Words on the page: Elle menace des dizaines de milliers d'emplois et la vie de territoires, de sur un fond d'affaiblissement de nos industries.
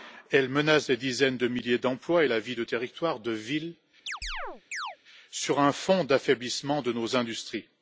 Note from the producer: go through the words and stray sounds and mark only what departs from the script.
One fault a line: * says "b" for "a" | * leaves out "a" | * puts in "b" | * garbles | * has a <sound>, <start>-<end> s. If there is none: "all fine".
* puts in "villes"
* has a chirp, 4.1-5.0 s